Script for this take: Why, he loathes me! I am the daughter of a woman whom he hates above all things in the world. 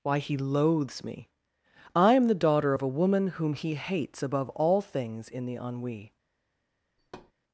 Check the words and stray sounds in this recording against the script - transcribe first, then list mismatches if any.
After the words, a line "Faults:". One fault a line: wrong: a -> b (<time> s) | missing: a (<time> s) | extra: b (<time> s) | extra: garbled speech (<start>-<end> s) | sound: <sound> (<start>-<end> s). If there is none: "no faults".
Why, he loathes me! I am the daughter of a woman whom he hates above all things in the ennui.
Faults:
wrong: world -> ennui (5.6 s)
sound: thud (7.0-7.3 s)